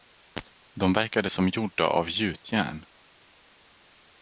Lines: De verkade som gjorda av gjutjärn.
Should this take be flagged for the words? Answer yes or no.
no